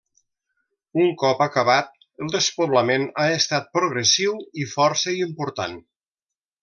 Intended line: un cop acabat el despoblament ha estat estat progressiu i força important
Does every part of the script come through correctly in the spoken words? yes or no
no